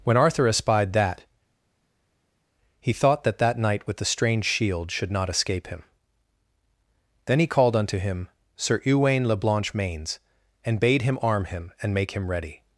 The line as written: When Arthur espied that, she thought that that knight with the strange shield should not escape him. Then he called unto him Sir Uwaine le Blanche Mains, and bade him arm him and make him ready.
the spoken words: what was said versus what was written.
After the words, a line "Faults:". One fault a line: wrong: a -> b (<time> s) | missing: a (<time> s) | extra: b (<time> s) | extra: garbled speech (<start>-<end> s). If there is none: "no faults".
When Arthur espied that, he thought that that knight with the strange shield should not escape him. Then he called unto him Sir Uwaine le Blanche Mains, and bade him arm him and make him ready.
Faults:
wrong: she -> he (2.8 s)